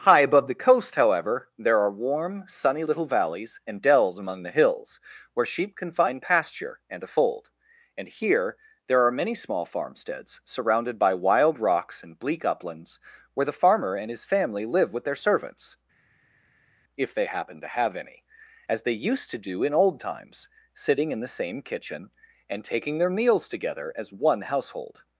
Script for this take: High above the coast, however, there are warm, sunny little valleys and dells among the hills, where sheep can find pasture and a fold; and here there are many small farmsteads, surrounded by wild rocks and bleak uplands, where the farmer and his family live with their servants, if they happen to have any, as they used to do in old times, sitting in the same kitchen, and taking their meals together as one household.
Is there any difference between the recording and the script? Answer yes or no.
no